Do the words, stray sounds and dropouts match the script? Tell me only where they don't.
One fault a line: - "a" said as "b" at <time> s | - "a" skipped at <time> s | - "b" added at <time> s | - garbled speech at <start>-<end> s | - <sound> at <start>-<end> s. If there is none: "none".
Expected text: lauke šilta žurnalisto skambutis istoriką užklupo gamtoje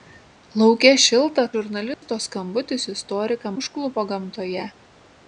- dropout at 1.9-2.0 s